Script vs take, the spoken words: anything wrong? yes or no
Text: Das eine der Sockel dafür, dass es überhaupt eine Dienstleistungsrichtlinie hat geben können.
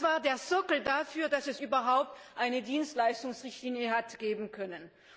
yes